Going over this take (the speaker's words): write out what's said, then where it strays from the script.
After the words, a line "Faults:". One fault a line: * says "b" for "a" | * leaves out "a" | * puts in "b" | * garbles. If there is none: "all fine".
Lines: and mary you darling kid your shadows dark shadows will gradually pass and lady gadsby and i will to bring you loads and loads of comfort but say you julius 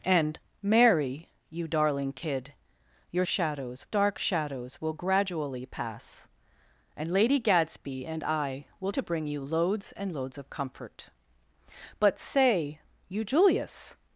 and mary you darling kid your shadows dark shadows will gradually pass and lady gadsby and i will to bring you loads and loads of comfort but say you julius
Faults:
all fine